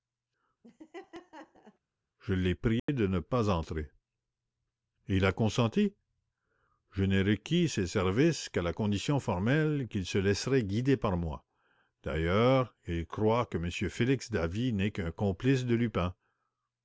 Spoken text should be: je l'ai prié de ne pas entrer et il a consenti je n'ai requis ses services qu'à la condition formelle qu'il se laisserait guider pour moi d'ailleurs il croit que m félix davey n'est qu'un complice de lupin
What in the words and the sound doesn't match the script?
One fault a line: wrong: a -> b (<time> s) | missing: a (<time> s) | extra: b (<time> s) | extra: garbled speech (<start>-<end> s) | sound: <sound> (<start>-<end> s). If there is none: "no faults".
sound: laugh (0.6-1.8 s)
sound: dropout (2.8-2.9 s)
wrong: pour -> par (11.0 s)